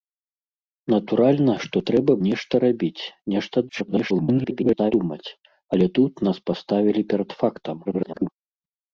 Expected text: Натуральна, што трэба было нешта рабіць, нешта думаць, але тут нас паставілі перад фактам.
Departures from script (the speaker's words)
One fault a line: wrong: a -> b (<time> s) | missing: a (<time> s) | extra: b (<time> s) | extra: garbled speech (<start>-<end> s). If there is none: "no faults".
missing: было (2.1 s)
extra: garbled speech (3.7-4.9 s)
extra: garbled speech (7.8-8.3 s)